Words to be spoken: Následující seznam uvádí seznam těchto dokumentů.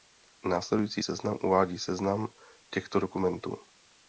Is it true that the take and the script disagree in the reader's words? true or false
false